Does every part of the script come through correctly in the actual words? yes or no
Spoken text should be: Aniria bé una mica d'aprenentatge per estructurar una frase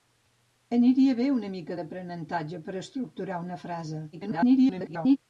no